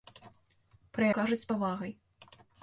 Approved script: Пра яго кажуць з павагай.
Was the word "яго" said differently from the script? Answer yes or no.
yes